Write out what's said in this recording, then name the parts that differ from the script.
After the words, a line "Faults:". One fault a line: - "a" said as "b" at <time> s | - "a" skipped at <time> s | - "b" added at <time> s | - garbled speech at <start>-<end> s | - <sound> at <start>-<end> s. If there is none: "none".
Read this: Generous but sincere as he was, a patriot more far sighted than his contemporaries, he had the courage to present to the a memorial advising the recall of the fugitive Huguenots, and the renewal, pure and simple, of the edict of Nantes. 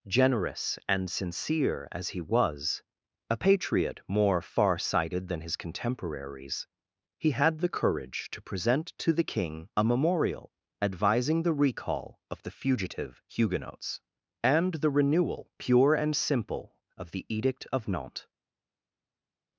Generous and sincere as he was, a patriot more far sighted than his contemporaries, he had the courage to present to the king a memorial advising the recall of the fugitive Huguenots, and the renewal, pure and simple, of the edict of Nantes.
Faults:
- "but" said as "and" at 0.9 s
- "king" added at 9.2 s